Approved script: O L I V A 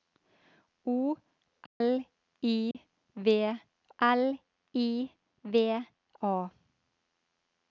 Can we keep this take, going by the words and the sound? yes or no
no